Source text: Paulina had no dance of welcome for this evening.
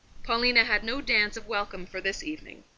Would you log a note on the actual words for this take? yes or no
no